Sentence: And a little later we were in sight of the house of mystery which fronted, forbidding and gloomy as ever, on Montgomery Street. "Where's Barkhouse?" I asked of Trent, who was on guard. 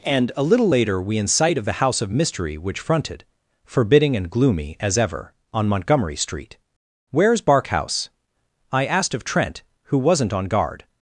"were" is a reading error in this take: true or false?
true